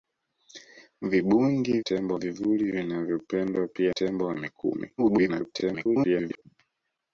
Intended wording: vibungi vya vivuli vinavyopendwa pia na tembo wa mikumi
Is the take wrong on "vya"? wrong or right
wrong